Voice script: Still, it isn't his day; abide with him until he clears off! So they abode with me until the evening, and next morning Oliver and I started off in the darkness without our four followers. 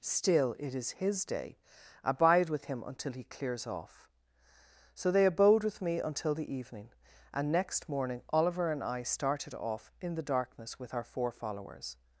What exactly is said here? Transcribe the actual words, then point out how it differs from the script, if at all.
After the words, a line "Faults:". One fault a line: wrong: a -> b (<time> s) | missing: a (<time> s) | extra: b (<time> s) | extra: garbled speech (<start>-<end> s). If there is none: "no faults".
Still, it is his day; abide with him until he clears off! So they abode with me until the evening, and next morning Oliver and I started off in the darkness with our four followers.
Faults:
wrong: isn't -> is (0.7 s)
wrong: without -> with (10.8 s)